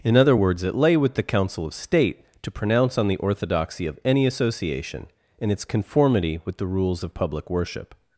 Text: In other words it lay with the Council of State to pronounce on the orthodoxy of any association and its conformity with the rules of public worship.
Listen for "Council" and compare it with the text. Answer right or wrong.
right